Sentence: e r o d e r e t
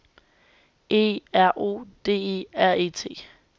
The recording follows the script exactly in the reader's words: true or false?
true